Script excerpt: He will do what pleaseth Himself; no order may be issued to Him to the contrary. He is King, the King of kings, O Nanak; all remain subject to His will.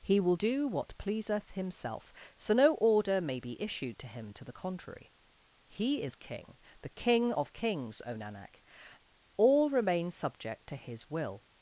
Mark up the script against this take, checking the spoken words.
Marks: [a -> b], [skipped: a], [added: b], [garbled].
He will do what pleaseth Himself; [added: so] no order may be issued to Him to the contrary. He is King, the King of kings, O Nanak; all remain subject to His will.